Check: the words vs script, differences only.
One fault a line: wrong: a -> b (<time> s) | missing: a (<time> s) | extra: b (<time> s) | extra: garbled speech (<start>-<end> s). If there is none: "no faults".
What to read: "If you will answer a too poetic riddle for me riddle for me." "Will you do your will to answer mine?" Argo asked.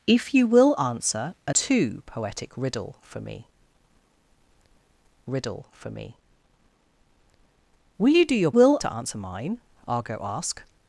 no faults